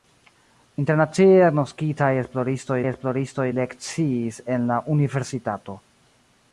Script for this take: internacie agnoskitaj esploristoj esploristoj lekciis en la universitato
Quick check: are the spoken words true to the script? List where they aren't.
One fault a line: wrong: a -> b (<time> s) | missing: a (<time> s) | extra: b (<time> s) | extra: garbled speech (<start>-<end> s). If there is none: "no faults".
no faults